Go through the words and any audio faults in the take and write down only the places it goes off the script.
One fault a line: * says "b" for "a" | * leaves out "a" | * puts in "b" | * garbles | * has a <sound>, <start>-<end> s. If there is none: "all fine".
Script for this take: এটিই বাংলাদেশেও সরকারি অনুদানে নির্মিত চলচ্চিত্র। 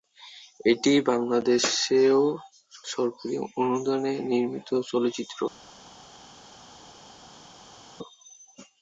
all fine